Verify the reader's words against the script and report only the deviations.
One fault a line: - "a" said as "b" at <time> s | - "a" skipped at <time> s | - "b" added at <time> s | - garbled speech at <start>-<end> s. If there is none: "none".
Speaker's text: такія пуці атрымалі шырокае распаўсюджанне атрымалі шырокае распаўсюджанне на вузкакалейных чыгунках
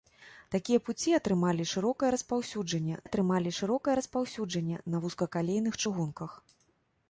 none